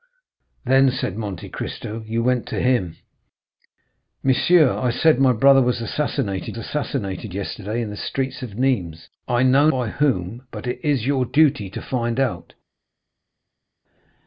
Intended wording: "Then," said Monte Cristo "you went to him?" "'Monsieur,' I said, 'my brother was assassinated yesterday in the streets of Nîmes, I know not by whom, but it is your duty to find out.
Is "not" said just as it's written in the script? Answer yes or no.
no